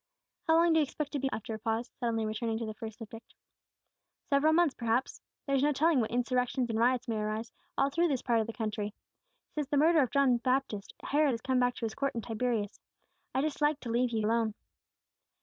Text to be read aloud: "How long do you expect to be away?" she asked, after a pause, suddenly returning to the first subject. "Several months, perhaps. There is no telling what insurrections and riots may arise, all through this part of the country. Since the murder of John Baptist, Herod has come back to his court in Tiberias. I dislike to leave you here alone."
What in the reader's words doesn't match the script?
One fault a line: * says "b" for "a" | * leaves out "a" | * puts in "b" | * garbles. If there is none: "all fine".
* leaves out "away she asked"
* leaves out "here"